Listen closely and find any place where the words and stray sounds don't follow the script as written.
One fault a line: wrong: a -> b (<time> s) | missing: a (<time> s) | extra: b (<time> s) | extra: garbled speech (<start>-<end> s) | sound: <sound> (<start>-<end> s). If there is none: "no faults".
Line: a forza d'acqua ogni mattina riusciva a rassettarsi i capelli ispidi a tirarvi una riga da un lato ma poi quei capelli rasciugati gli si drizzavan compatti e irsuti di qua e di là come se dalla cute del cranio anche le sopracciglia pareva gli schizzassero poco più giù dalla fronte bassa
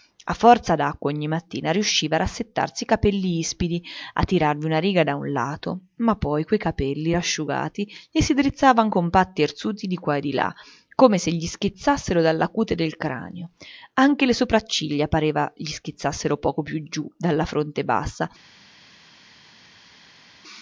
extra: gli schizzassero (11.3 s)